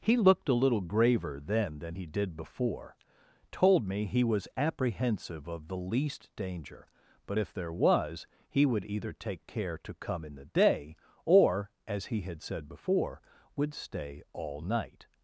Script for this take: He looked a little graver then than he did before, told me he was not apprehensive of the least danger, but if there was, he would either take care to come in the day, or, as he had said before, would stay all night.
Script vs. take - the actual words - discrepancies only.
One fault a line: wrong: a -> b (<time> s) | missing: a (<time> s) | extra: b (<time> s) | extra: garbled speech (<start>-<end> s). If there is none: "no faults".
missing: not (4.5 s)